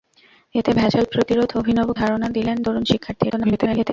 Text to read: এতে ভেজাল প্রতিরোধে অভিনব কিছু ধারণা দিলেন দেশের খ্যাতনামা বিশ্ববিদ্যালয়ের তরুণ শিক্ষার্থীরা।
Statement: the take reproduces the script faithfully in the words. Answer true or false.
false